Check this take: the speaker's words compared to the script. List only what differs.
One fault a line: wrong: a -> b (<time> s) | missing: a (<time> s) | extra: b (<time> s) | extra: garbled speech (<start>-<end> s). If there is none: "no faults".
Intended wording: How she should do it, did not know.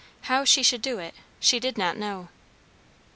extra: she (1.4 s)